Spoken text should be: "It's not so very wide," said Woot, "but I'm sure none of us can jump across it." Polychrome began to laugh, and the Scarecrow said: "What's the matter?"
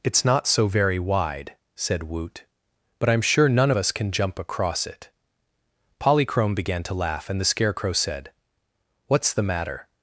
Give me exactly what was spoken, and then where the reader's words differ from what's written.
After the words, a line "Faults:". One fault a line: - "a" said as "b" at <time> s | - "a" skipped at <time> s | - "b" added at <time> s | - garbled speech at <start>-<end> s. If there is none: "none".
"It's not so very wide," said Woot, "but I'm sure none us can jump across it." Polychrome began to laugh, and the Scarecrow said: "What's the matter?"
Faults:
- "of" skipped at 3.7 s